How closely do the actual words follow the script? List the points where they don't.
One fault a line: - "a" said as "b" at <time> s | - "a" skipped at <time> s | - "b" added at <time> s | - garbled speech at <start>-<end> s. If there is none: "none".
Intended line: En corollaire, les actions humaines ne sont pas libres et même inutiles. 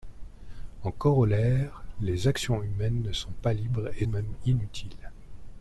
none